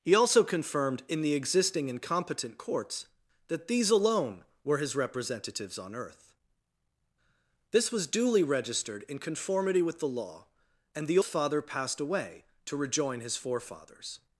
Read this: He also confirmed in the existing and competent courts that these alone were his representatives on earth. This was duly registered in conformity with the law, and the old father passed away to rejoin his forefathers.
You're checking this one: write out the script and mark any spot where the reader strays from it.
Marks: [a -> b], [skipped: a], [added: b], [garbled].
He also confirmed in the existing and competent courts that these alone were his representatives on earth. This was duly registered in conformity with the law, and the [skipped: old] father passed away to rejoin his forefathers.